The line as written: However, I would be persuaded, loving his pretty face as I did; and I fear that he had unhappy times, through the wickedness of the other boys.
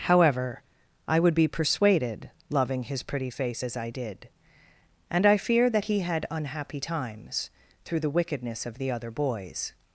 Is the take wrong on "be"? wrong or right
right